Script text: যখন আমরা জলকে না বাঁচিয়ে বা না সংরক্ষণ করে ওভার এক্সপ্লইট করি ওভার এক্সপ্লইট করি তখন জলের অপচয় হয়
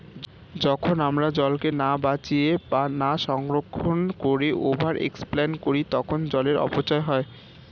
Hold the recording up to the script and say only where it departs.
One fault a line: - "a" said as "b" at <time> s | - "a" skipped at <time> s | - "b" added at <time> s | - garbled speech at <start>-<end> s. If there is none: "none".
- "ওভার এক্সপ্লইট করি" skipped at 5.8 s